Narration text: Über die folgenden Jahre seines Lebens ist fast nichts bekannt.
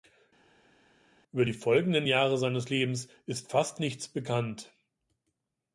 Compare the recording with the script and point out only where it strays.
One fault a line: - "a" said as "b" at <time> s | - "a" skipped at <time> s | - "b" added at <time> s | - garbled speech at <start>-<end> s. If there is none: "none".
none